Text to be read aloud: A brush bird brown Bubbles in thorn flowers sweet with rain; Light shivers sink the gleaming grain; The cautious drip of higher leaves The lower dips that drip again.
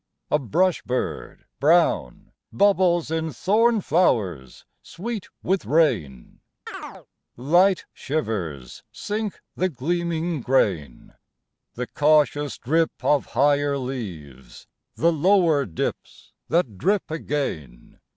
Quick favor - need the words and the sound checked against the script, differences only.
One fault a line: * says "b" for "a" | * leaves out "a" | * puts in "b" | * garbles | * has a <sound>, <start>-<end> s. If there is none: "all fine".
* has a chirp, 6.7-7.1 s